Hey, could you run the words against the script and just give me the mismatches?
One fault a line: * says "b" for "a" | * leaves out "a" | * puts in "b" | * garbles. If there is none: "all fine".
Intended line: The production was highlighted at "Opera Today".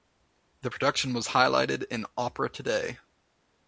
* says "in" for "at"